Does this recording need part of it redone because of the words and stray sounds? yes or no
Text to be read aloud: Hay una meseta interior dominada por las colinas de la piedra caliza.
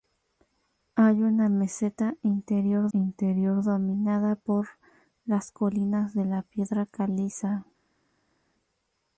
yes